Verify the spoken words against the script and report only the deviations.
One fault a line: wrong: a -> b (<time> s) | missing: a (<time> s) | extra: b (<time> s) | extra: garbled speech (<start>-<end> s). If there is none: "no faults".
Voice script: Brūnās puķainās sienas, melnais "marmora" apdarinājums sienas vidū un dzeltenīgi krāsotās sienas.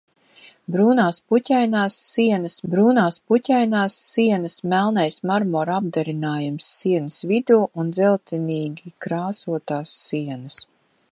extra: brūnās puķainās sienas (2.7 s)